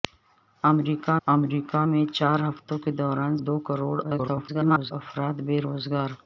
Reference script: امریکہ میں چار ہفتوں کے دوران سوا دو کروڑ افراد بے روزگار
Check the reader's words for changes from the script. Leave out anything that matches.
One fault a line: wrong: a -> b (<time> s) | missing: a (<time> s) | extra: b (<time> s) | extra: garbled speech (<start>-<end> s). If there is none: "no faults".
extra: امریکہ (1.3 s)
missing: سوا (3.3 s)
extra: garbled speech (4.0-4.9 s)